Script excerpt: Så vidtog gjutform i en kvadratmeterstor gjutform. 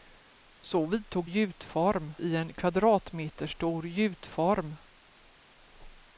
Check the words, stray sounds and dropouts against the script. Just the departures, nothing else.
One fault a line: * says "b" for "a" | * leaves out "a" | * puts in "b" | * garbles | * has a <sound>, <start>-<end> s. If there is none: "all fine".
all fine